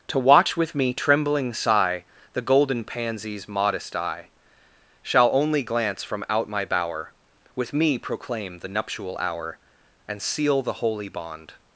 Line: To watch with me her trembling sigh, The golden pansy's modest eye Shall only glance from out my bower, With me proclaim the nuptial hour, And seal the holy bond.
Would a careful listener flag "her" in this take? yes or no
yes